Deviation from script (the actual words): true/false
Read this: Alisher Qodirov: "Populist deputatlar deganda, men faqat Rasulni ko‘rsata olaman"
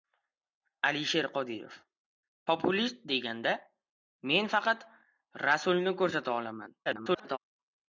true